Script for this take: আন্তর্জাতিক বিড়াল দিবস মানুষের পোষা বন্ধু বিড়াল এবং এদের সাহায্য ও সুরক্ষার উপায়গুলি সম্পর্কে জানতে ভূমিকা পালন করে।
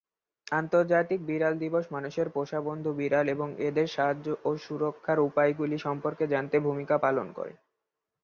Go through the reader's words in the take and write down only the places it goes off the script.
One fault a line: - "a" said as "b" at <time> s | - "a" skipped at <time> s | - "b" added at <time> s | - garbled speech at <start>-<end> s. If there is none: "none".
none